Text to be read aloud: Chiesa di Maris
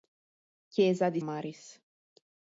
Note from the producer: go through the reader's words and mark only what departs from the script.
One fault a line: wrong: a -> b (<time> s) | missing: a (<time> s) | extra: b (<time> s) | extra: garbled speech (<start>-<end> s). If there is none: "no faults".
no faults